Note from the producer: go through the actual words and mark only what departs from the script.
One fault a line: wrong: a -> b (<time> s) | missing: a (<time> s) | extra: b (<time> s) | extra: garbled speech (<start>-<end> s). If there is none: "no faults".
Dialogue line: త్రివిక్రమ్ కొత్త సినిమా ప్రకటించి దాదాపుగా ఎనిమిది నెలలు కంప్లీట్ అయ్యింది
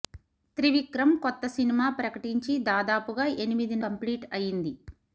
missing: నెలలు (3.8 s)